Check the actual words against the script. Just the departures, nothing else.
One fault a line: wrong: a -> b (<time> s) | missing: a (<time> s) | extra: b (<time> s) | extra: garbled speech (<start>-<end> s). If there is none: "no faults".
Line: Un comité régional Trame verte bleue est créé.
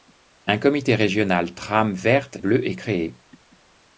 no faults